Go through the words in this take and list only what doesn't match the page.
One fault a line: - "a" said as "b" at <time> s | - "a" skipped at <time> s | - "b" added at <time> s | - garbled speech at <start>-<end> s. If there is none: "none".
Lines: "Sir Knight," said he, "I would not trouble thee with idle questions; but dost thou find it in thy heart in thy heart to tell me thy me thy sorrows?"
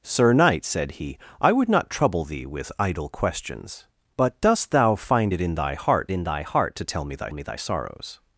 none